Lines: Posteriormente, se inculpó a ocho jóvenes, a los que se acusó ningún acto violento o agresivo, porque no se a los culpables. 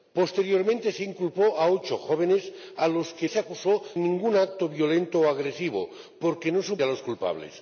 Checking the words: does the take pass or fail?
pass